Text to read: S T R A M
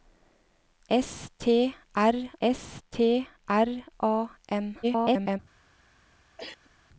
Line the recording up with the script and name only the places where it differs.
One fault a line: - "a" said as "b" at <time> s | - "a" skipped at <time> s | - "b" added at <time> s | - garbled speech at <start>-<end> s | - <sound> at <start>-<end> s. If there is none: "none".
- "s T R" added at 2.4 s
- garbled speech at 4.8-5.4 s
- cough at 6.4-6.7 s